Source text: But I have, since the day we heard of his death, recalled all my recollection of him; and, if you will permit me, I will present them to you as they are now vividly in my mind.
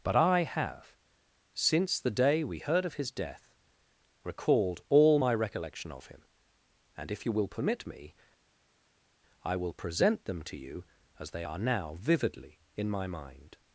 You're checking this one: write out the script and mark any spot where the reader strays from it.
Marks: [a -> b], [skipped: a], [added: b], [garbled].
But I have, since the day we heard of his death, recalled all my recollection of him; and, if you will permit me, I will present them to you as they are now vividly in my mind.